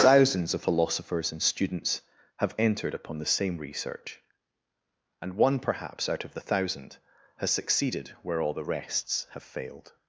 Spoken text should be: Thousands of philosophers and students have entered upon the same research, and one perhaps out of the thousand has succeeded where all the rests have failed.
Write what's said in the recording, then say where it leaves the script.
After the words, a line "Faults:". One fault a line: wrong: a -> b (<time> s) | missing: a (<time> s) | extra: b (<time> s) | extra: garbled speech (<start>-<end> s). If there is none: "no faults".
Thousands of philosophers and students have entered upon the same research, and one perhaps out of the thousand has succeeded where all the rests have failed.
Faults:
no faults